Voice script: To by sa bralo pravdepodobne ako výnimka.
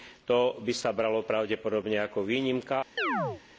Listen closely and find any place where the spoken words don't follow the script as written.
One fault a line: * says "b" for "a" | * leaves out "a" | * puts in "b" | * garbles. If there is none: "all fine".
all fine